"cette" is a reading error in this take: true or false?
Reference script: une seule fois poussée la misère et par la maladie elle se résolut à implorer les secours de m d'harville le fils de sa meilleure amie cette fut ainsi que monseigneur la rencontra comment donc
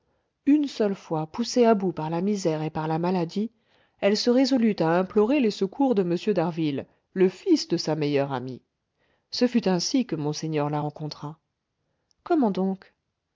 true